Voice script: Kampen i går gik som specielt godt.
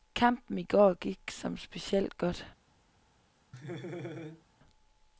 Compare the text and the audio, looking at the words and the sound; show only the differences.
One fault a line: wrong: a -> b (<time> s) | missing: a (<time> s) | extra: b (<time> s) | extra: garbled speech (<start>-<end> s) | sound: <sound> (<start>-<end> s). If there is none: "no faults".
sound: laugh (3.5-4.5 s)